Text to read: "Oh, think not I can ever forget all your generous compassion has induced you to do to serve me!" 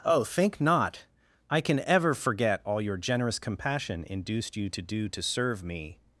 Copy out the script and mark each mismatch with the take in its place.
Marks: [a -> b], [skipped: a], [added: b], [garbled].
"Oh, think not I can ever forget all your generous compassion [skipped: has] induced you to do to serve me!"